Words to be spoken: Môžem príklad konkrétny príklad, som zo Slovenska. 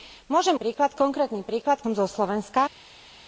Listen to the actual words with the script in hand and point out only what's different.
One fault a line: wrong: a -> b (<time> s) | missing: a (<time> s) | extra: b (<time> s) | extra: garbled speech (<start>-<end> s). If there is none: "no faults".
no faults